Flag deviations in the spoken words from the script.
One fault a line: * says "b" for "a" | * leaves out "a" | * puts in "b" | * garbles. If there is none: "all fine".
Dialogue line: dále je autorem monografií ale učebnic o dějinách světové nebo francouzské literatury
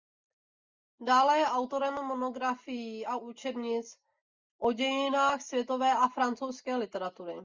* says "a" for "ale"
* says "a" for "nebo"